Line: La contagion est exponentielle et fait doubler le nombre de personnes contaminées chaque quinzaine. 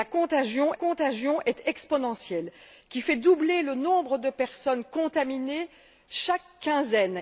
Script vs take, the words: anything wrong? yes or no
yes